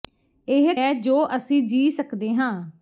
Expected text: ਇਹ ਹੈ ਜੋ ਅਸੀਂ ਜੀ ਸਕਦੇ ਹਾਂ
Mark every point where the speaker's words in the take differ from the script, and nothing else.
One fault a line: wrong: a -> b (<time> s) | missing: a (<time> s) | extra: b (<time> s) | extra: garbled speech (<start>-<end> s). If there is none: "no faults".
no faults